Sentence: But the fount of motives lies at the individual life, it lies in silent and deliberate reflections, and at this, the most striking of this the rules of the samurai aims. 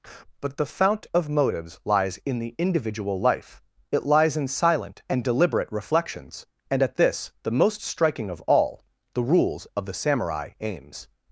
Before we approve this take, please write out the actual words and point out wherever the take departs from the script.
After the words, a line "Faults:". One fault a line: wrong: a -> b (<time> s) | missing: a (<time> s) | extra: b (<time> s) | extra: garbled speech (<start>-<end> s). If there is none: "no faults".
But the fount of motives lies in the individual life, it lies in silent and deliberate reflections, and at this, the most striking of all the rules of the samurai aims.
Faults:
wrong: at -> in (2.2 s)
wrong: this -> all (8.4 s)